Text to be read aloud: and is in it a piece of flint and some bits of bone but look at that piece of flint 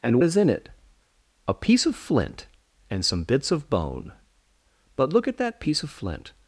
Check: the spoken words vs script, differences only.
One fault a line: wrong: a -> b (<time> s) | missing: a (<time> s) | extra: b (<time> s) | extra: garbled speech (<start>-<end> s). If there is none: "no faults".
no faults